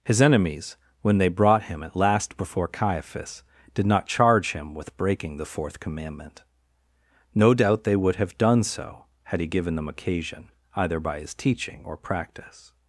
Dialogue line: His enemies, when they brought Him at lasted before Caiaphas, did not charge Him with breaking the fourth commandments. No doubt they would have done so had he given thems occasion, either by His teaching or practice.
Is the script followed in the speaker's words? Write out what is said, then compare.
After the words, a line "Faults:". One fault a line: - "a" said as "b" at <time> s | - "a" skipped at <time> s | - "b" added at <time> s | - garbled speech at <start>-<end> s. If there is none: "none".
His enemies, when they brought Him at last before Caiaphas, did not charge Him with breaking the fourth commandment. No doubt they would have done so had he given them occasion, either by His teaching or practice.
Faults:
- "lasted" said as "last" at 2.0 s
- "commandments" said as "commandment" at 5.8 s
- "thems" said as "them" at 9.8 s